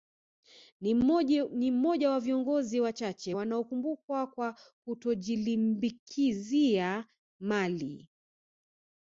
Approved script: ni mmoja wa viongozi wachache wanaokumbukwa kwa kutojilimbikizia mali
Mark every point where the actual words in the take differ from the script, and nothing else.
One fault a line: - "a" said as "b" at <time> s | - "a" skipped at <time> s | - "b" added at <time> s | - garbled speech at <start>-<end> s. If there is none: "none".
none